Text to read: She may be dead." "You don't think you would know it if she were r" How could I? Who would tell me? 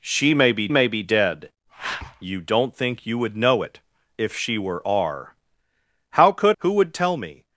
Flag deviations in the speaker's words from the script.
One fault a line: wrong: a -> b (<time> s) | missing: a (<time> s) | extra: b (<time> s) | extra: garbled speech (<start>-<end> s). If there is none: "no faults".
extra: may be (0.7 s)
missing: I (6.6 s)